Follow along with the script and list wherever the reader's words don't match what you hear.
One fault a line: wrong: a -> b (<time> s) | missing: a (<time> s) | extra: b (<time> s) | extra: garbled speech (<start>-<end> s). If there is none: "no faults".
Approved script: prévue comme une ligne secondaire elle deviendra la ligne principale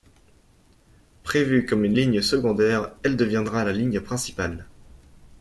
no faults